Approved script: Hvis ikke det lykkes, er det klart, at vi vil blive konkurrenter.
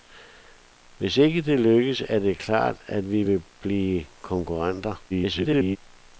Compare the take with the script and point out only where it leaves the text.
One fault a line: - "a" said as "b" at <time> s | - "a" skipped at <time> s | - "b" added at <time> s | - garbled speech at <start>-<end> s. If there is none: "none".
- garbled speech at 5.1-5.8 s